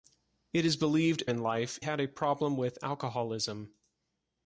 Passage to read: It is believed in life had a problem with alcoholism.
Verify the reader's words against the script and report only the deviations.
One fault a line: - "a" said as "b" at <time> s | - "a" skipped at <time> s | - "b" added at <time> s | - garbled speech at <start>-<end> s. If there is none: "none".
none